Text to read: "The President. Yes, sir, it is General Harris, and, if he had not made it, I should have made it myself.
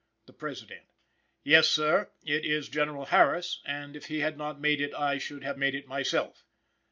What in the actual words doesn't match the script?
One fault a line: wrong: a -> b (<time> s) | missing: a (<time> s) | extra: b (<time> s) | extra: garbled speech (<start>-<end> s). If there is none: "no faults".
no faults